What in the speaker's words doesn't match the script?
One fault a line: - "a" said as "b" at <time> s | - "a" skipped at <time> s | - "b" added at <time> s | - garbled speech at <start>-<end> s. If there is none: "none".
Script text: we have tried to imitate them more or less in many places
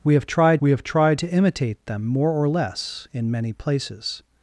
- "we have tried" added at 0.6 s